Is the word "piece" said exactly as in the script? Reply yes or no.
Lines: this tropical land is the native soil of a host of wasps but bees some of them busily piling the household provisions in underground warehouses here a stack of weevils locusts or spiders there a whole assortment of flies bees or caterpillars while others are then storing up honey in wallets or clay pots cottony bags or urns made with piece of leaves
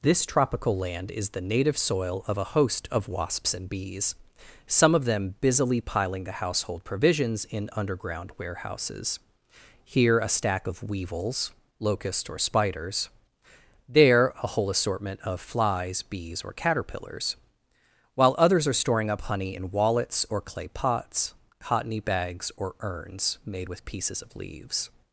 no